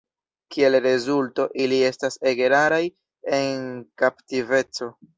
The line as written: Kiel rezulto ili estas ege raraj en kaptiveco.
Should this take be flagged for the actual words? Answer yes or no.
no